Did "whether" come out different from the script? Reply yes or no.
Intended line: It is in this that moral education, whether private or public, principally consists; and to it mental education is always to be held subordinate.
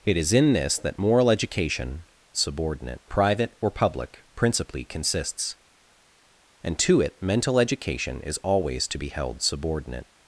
yes